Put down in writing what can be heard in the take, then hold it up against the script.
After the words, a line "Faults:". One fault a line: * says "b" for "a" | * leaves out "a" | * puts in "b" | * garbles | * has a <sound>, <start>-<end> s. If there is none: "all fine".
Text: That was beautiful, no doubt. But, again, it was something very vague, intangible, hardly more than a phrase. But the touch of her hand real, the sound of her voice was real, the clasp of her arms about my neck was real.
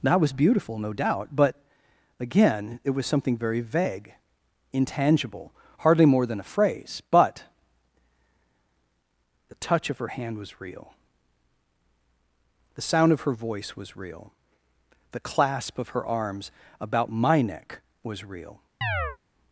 That was beautiful, no doubt. But, again, it was something very vague, intangible, hardly more than a phrase. But the touch of her hand was real, the sound of her voice was real, the clasp of her arms about my neck was real.
Faults:
* puts in "was"
* has a chirp, 18.8-19.2 s